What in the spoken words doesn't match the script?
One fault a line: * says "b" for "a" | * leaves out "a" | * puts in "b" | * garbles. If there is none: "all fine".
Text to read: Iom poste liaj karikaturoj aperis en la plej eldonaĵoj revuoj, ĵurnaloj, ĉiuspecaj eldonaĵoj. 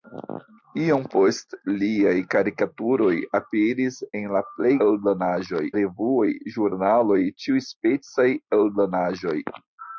all fine